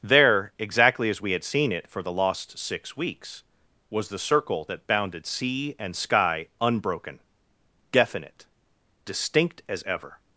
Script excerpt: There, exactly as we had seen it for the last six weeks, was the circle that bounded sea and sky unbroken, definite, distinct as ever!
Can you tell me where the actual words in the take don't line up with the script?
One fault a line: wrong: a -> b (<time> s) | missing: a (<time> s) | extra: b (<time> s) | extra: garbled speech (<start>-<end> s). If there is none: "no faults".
wrong: last -> lost (2.1 s)